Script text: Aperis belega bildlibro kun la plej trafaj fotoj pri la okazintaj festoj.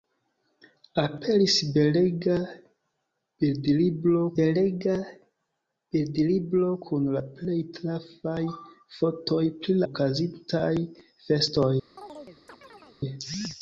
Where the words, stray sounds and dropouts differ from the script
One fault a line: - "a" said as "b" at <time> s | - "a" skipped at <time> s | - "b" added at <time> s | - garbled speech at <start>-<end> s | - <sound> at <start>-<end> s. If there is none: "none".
- "belega bildlibro" added at 4.4 s
- "la" skipped at 9.8 s
- chirp at 12.0-13.0 s